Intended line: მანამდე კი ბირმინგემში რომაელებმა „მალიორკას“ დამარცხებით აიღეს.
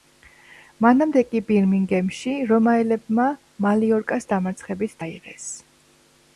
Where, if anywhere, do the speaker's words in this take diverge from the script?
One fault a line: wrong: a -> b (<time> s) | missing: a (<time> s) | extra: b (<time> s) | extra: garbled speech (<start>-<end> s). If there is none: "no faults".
no faults